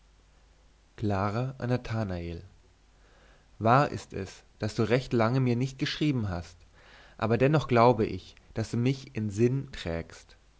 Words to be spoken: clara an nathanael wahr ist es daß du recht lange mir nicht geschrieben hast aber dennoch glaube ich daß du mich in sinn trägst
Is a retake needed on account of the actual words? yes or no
no